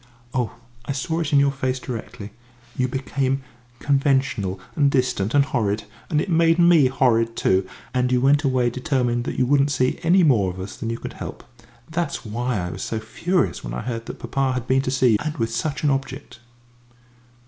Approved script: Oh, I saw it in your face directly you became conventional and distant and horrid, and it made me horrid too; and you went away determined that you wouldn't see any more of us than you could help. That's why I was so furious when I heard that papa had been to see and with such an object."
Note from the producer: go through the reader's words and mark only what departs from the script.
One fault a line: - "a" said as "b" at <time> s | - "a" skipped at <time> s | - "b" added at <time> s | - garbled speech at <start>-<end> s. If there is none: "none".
none